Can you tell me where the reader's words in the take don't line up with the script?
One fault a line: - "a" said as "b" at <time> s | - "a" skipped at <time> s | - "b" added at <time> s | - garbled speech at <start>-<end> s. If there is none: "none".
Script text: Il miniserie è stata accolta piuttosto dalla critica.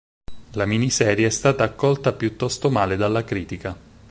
- "Il" said as "La" at 0.5 s
- "male" added at 2.7 s